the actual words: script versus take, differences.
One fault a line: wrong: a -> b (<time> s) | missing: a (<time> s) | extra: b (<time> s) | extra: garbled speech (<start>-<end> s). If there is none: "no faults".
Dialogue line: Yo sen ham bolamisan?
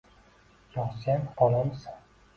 missing: ham (1.3 s)